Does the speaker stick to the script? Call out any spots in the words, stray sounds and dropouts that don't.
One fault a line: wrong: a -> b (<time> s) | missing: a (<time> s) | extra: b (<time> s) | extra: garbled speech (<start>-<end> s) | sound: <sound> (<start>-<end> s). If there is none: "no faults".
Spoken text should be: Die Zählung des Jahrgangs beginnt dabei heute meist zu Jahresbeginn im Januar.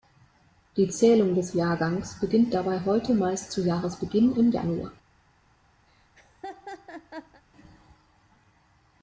sound: laugh (5.9-7.4 s)